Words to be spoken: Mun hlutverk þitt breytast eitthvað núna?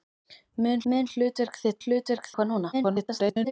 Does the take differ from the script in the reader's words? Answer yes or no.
yes